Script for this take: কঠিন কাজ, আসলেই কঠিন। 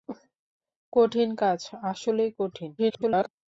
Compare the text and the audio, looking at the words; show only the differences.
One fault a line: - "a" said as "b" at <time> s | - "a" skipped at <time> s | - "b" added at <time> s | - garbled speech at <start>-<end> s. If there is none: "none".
- garbled speech at 2.8-3.3 s